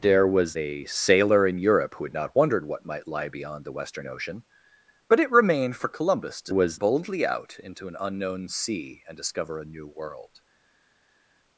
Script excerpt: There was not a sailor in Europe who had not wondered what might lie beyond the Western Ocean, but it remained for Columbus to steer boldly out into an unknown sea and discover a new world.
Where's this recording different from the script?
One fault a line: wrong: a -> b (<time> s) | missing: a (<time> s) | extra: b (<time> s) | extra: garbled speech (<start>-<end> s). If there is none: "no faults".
missing: not (0.6 s)
wrong: steer -> was (6.5 s)